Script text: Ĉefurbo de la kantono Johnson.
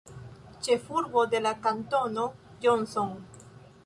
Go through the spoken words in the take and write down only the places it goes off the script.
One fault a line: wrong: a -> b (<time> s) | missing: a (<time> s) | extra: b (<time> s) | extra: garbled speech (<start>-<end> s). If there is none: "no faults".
no faults